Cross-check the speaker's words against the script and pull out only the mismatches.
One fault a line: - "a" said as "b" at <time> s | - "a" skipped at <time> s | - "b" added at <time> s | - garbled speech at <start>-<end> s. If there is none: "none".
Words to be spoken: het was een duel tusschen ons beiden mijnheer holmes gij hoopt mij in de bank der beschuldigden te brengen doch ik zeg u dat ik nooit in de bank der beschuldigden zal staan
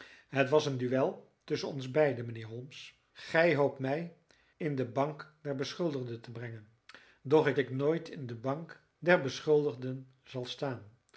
- "zeg u dat" skipped at 7.6 s